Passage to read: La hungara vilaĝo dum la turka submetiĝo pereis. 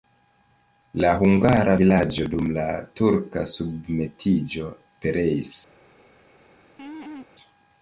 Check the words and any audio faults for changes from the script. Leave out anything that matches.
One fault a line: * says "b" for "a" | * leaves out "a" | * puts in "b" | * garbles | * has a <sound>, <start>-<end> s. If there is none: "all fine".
* has a laugh, 6.8-7.3 s